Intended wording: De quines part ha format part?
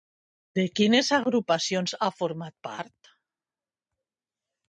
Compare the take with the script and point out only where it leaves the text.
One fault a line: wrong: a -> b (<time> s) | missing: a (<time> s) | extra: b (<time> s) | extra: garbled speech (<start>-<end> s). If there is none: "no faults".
wrong: part -> agrupacions (1.2 s)